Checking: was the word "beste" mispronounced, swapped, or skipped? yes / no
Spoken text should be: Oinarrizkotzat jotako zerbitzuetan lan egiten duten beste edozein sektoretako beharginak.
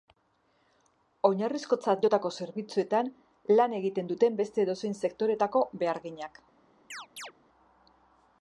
no